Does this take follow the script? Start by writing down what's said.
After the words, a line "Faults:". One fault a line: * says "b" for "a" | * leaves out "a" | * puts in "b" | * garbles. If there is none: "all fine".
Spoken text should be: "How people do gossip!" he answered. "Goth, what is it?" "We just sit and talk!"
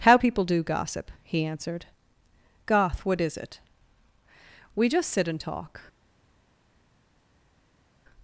"How people do gossip!" he answered. "Goth, what is it?" "We just sit and talk!"
Faults:
all fine